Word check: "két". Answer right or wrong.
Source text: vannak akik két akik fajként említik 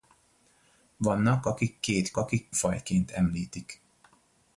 right